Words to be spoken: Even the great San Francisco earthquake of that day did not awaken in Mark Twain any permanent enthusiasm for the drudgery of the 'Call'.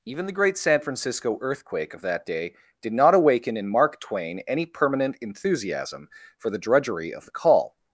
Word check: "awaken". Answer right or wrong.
right